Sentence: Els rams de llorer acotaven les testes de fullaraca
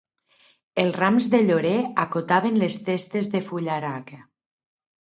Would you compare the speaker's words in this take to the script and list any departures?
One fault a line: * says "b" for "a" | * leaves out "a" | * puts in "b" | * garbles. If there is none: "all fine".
all fine